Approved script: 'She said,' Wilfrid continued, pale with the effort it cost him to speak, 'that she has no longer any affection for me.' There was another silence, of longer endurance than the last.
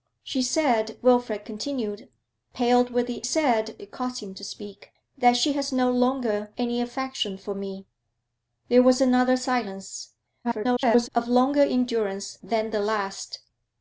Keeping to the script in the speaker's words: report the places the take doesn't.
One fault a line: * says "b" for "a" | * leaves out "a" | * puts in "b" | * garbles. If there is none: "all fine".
* says "said" for "effort"
* garbles